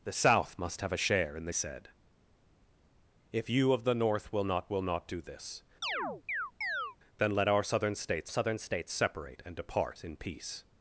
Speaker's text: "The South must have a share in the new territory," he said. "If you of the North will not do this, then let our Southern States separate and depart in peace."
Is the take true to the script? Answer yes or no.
no